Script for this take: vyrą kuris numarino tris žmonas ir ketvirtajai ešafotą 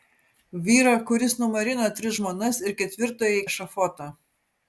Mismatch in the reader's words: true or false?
false